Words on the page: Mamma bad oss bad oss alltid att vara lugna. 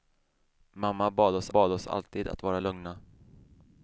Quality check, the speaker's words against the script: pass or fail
pass